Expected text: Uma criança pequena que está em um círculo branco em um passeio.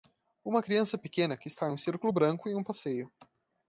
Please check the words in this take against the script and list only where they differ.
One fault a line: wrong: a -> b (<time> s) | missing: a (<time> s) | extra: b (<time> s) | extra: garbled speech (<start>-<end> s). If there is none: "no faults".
no faults